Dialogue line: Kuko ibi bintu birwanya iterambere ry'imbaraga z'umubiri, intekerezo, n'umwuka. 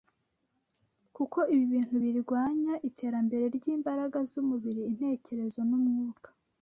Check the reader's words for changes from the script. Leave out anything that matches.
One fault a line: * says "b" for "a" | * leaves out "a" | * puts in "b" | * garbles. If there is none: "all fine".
all fine